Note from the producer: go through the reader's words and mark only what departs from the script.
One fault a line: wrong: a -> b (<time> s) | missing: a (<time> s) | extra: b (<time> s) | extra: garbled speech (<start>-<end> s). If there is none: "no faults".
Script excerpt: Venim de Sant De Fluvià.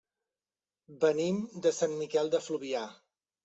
extra: Miquel (2.0 s)